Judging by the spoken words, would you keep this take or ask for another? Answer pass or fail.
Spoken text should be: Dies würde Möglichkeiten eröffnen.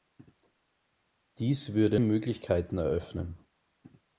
pass